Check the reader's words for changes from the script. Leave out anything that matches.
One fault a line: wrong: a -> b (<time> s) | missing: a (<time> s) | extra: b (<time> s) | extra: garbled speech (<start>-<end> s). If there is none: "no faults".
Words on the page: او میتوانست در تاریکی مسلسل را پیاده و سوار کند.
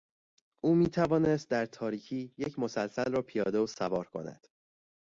extra: یک (2.4 s)